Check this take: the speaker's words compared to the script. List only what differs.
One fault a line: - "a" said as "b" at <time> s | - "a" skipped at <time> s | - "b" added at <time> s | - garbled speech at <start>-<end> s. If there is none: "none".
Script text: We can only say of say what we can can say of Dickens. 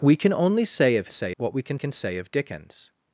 none